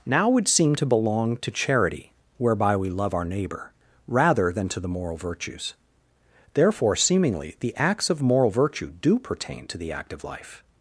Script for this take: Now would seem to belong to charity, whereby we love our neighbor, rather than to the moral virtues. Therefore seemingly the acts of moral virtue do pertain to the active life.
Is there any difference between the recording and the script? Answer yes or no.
no